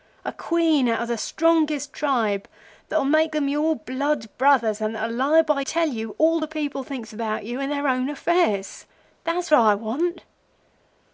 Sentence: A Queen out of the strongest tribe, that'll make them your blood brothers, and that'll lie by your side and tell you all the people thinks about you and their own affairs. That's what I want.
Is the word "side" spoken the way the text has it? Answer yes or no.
no